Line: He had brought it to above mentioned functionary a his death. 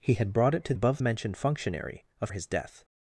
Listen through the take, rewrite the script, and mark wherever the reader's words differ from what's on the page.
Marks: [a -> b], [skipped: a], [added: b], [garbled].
He had brought it to above mentioned functionary a his death.